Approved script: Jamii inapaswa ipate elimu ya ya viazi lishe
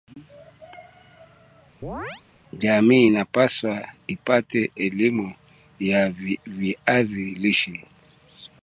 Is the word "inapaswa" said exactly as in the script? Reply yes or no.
yes